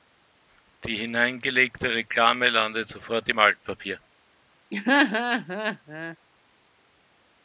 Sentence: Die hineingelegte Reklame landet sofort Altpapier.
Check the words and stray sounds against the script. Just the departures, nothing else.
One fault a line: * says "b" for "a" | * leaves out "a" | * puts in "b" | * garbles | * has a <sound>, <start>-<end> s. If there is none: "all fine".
* puts in "im"
* has a laugh, 4.7-6.2 s